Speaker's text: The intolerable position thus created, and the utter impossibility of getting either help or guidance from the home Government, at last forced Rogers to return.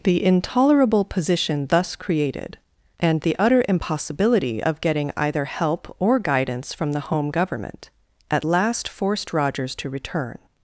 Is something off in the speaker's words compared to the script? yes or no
no